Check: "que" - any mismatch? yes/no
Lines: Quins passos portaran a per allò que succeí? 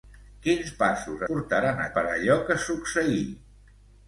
no